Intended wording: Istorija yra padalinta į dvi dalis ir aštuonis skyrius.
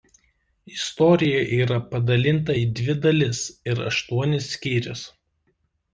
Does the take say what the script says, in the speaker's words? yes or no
yes